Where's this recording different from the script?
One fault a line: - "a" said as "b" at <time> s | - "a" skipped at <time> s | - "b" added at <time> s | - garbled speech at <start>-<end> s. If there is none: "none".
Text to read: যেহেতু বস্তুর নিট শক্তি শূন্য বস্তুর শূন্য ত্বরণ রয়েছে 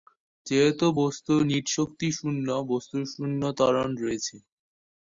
none